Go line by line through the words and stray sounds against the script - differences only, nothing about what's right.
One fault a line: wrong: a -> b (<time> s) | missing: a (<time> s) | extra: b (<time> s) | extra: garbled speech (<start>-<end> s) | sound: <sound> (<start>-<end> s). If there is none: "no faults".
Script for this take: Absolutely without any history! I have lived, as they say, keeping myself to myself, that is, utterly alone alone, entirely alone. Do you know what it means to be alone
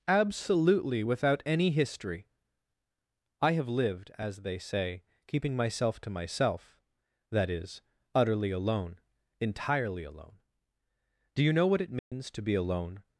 missing: alone (9.0 s)
sound: dropout (12.0-12.1 s)